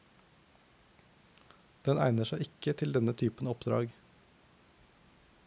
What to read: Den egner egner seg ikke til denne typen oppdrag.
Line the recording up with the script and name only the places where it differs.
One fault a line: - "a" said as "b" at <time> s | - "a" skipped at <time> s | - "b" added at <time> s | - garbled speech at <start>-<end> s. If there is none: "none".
- "egner" skipped at 2.3 s